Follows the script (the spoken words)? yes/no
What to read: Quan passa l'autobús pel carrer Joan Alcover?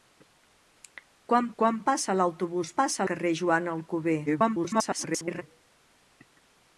no